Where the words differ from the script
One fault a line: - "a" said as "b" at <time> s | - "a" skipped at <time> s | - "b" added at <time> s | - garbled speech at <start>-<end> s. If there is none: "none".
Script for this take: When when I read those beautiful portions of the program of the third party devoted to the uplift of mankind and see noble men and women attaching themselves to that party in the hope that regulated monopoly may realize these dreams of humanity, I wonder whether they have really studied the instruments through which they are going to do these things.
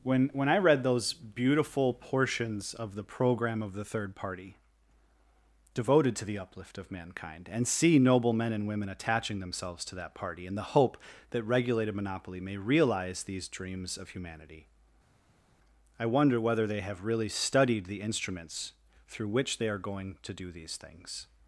none